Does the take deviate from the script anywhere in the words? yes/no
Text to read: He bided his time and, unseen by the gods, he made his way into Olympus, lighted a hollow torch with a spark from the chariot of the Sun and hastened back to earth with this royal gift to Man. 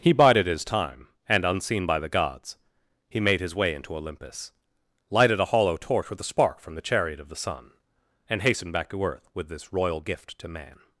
no